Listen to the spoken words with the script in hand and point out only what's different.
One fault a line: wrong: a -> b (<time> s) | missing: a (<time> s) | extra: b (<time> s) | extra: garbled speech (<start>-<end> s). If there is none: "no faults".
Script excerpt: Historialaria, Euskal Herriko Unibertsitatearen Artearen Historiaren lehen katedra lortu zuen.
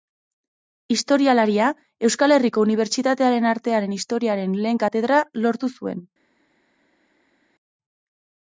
no faults